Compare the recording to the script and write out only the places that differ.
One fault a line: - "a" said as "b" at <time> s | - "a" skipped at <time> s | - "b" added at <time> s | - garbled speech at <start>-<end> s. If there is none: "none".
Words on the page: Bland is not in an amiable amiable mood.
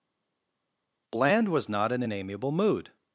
- "is" said as "was" at 1.5 s
- "amiable" skipped at 2.5 s